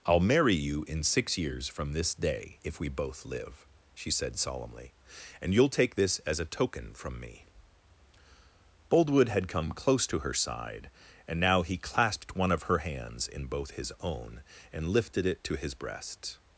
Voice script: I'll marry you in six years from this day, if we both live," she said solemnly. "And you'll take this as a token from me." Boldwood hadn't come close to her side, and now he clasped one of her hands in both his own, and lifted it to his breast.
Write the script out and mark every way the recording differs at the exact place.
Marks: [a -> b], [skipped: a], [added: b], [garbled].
I'll marry you in six years from this day, if we both live," she said solemnly. "And you'll take this as a token from me." Boldwood [hadn't -> had] come close to her side, and now he clasped one of her hands in both his own, and lifted it to his breast.